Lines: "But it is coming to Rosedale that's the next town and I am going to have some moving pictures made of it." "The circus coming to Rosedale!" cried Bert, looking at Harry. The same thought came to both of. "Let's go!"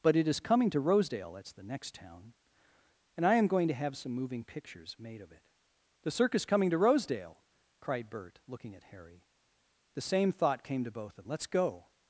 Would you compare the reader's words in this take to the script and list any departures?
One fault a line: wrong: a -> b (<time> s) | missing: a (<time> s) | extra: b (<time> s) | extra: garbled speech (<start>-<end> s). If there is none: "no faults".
no faults